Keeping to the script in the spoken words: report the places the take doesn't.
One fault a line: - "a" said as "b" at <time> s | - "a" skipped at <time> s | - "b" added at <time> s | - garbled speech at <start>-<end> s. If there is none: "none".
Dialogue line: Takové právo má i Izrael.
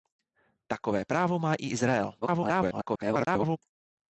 - garbled speech at 2.2-3.6 s